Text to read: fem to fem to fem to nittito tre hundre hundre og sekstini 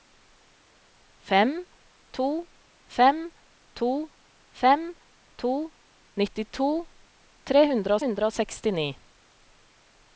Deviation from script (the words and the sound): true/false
false